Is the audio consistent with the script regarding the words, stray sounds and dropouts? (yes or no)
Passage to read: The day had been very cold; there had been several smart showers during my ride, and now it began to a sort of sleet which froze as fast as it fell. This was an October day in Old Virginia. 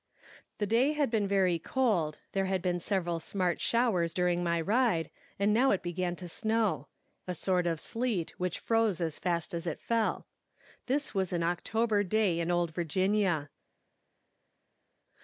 no